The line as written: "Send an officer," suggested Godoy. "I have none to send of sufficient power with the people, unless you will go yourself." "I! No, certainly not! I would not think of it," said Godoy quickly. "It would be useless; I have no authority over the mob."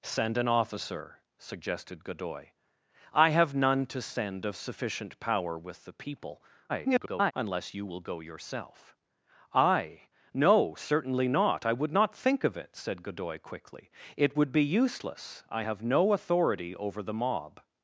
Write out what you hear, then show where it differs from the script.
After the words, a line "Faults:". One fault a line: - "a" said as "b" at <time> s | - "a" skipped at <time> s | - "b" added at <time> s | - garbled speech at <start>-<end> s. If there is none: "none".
"Send an officer," suggested Godoy. "I have none to send of sufficient power with the people, [garbled] unless you will go yourself." "I! No, certainly not! I would not think of it," said Godoy quickly. "It would be useless; I have no authority over the mob."
Faults:
- garbled speech at 6.7-7.3 s